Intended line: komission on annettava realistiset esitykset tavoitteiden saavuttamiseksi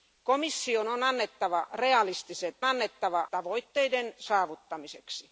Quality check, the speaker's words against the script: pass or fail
fail